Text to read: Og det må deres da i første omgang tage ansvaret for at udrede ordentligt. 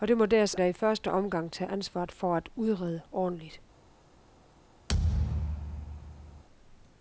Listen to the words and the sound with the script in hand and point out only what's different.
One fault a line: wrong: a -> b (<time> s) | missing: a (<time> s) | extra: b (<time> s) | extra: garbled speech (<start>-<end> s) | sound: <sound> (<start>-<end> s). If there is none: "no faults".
sound: thud (4.9-6.4 s)